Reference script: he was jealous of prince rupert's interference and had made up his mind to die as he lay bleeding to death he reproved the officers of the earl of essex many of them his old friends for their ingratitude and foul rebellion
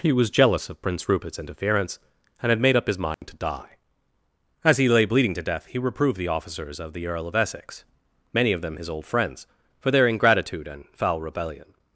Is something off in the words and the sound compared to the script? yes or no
yes